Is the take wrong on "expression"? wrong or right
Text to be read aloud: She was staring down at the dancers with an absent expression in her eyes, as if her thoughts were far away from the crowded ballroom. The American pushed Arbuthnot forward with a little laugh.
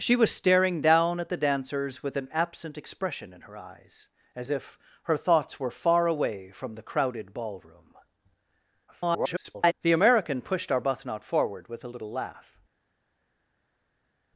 right